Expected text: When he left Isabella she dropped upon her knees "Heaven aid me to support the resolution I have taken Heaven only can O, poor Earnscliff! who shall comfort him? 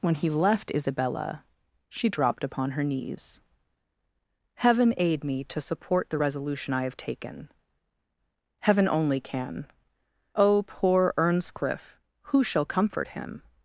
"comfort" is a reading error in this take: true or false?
false